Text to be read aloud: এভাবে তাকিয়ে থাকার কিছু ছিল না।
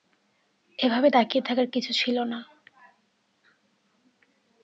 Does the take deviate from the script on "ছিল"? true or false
false